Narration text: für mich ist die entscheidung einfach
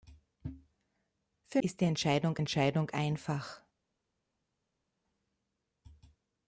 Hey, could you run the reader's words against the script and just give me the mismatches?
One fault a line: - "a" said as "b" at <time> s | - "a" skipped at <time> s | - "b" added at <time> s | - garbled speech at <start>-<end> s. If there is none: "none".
- "mich" skipped at 1.6 s
- "entscheidung" added at 2.4 s